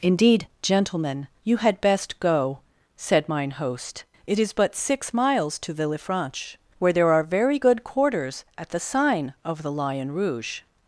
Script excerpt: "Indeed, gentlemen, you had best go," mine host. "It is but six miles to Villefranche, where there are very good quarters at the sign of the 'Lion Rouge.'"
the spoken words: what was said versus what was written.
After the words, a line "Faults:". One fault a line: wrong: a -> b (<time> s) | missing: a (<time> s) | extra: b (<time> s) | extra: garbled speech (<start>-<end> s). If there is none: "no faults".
"Indeed, gentlemen, you had best go," said mine host. "It is but six miles to Villefranche, where there are very good quarters at the sign of the 'Lion Rouge.'"
Faults:
extra: said (3.0 s)